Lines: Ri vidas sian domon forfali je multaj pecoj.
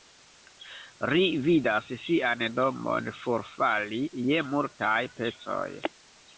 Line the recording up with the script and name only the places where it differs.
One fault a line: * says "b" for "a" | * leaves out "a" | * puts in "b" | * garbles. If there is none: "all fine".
all fine